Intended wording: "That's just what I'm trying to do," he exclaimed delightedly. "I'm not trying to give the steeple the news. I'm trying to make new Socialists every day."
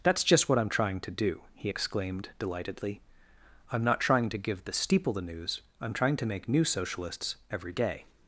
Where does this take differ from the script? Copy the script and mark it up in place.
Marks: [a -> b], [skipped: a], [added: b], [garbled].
"That's just what I'm trying to do," he exclaimed delightedly. "I'm not trying to give the steeple the news. I'm trying to make new Socialists every day."